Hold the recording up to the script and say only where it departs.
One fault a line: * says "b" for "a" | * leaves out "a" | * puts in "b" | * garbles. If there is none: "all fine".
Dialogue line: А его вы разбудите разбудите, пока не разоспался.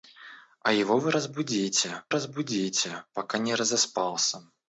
all fine